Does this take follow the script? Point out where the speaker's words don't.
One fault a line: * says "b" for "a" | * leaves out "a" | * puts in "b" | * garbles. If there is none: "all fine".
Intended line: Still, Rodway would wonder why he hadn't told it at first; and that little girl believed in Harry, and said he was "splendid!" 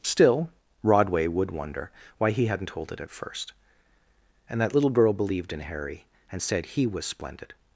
all fine